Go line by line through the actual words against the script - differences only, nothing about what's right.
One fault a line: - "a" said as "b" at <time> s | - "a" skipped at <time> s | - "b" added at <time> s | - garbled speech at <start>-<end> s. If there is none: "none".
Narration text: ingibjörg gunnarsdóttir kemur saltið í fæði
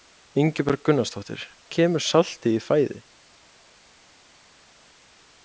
none